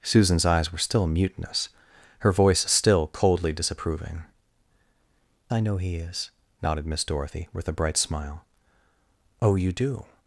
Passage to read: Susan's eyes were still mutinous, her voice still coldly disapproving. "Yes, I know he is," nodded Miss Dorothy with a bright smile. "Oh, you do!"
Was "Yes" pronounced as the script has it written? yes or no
no